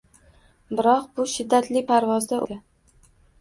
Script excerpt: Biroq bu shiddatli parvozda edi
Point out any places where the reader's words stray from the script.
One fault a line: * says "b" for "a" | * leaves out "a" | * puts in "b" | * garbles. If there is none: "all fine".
all fine